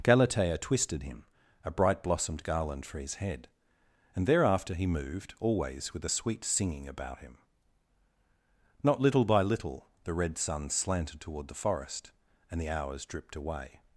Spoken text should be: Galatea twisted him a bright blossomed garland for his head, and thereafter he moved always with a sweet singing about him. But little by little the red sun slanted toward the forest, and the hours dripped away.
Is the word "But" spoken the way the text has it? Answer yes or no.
no